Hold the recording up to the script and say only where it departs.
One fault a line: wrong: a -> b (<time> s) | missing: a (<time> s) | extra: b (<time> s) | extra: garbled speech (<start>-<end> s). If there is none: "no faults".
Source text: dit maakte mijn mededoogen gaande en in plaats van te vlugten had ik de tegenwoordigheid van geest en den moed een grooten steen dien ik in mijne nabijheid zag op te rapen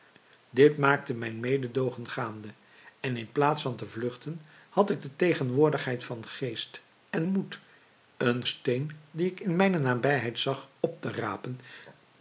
missing: den (7.3 s)
missing: grooten (8.5 s)